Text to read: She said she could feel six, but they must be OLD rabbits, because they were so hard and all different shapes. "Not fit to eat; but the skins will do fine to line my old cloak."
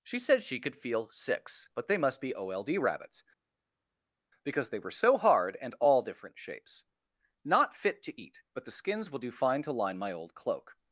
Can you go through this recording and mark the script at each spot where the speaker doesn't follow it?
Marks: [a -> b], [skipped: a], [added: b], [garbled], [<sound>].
She said she could feel six, but they must be OLD rabbits, because they were so hard and all different shapes. "Not fit to eat; but the skins will do fine to line my old cloak."